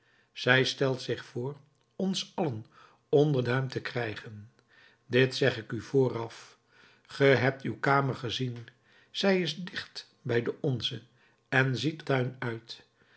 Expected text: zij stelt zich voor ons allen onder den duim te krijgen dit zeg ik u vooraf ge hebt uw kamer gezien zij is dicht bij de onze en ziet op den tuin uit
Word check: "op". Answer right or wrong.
wrong